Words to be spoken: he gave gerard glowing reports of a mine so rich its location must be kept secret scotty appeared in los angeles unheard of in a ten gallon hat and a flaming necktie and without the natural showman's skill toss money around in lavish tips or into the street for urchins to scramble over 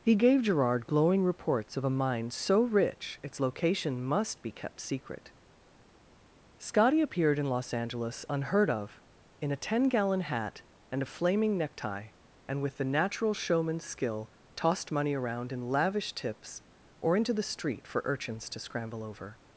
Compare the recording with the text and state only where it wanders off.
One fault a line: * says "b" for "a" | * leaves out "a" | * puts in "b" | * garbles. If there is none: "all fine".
* says "with" for "without"
* says "tossed" for "toss"